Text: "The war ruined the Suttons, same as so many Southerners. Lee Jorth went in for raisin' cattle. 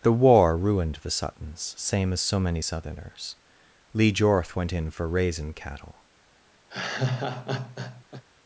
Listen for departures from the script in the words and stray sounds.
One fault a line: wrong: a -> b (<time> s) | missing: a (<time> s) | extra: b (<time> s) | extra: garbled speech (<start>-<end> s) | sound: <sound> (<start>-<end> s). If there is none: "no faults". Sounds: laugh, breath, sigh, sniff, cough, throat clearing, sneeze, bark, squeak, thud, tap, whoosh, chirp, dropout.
sound: laugh (6.7-8.2 s)